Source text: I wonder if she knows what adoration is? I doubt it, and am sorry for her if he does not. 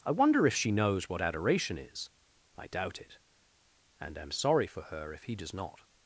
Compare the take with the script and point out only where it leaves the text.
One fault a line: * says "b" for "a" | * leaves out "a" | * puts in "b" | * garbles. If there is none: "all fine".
all fine